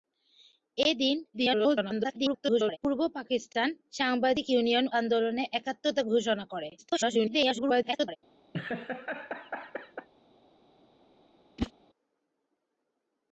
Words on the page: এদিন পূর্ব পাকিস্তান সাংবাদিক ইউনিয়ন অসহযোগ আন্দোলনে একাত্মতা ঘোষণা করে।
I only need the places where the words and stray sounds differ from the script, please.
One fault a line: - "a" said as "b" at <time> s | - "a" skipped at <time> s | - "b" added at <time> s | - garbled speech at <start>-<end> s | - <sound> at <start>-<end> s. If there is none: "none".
- garbled speech at 1.3-2.8 s
- "অসহযোগ" skipped at 4.8 s
- garbled speech at 6.8-8.2 s
- laugh at 8.5-10.1 s
- whoosh at 11.6-11.7 s